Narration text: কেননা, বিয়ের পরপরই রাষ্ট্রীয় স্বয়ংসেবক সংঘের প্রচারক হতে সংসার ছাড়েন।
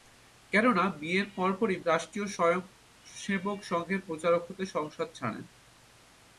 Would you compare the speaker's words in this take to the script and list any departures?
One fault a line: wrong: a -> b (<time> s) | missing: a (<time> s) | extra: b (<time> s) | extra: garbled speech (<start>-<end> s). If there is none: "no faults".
no faults